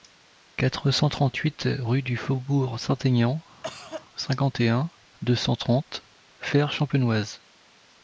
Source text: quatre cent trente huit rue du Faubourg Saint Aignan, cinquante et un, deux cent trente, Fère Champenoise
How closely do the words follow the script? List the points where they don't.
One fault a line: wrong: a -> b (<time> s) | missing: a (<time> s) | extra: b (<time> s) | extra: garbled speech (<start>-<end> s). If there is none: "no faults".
no faults